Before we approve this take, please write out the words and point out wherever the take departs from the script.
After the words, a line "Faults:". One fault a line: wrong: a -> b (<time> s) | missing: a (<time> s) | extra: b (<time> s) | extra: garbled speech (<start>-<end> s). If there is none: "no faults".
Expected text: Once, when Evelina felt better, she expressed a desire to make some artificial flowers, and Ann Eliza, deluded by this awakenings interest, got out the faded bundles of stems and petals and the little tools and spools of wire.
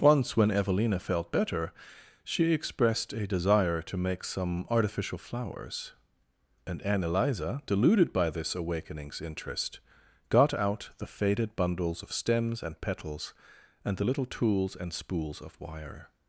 Once, when Evelina felt better, she expressed a desire to make some artificial flowers, and Ann Eliza, deluded by this awakenings interest, got out the faded bundles of stems and petals and the little tools and spools of wire.
Faults:
no faults